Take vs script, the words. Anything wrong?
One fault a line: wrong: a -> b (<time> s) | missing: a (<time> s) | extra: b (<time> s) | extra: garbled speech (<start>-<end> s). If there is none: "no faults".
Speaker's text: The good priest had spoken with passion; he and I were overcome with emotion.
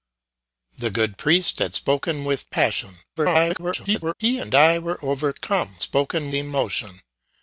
extra: garbled speech (3.2-4.1 s)
wrong: with -> spoken (5.8 s)